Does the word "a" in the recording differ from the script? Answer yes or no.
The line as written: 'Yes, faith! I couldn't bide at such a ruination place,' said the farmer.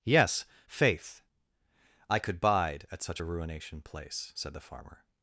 no